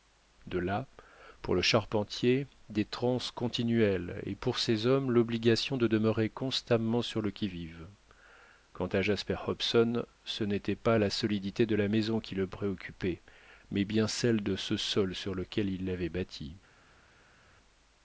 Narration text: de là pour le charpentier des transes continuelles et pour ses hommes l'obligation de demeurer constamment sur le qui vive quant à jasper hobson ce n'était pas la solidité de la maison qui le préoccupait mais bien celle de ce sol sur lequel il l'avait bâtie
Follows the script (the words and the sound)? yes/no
yes